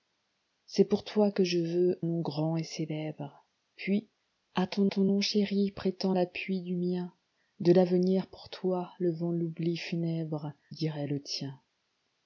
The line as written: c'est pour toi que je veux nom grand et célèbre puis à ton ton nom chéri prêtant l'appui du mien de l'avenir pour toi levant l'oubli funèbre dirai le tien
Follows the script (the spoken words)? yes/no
yes